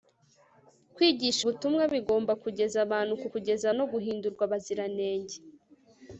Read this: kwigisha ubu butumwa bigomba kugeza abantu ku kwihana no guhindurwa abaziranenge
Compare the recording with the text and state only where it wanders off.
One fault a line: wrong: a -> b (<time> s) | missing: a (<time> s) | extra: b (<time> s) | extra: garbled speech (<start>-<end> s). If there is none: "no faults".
missing: ubu (1.4 s)
wrong: kwihana -> kugeza (3.3 s)